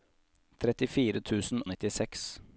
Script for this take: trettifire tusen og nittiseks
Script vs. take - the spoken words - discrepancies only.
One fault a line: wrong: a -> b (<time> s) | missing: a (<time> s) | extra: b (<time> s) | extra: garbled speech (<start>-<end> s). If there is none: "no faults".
no faults